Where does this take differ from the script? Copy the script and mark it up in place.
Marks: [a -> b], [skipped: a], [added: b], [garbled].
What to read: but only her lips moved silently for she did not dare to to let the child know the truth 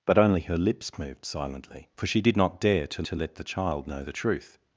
but only her lips moved silently for she did not dare to to let the child know the truth